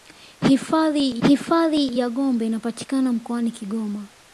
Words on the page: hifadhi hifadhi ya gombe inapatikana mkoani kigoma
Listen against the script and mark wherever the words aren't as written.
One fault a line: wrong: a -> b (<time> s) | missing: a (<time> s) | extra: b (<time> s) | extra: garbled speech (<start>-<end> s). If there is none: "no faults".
no faults